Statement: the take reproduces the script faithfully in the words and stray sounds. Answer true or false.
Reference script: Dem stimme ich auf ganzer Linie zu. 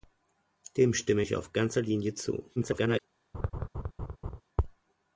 false